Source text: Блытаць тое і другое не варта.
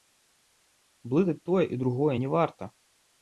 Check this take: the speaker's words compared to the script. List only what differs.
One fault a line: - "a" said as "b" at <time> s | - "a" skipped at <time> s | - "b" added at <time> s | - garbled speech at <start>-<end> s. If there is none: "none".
none